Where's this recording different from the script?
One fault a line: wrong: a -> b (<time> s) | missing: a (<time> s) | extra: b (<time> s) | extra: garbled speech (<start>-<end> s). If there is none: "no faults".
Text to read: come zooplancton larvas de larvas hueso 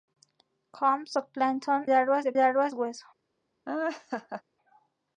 no faults